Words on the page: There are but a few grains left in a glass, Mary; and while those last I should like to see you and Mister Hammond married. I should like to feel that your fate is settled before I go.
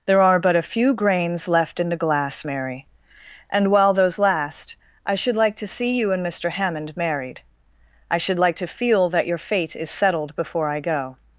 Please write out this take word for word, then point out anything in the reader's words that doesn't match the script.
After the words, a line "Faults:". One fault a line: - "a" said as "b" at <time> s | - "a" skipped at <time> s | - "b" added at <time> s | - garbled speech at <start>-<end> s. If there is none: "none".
There are but a few grains left in the glass, Mary; and while those last I should like to see you and Mister Hammond married. I should like to feel that your fate is settled before I go.
Faults:
- "a" said as "the" at 1.9 s